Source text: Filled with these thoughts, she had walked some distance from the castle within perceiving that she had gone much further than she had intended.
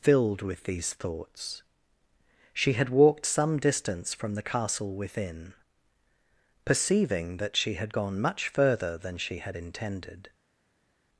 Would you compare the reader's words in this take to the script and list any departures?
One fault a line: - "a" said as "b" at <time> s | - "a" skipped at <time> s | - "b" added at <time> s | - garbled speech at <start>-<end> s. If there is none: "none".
none